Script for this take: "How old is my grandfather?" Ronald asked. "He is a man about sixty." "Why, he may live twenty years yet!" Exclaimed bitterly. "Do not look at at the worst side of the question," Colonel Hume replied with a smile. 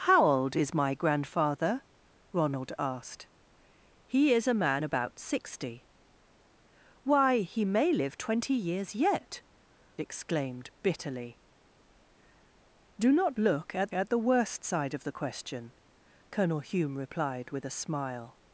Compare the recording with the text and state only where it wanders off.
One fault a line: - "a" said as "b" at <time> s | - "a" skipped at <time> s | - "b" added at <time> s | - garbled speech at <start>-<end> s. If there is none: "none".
none